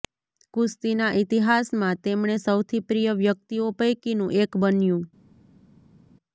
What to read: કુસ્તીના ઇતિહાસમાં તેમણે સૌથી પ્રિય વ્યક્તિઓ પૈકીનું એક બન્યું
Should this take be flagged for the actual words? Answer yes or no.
no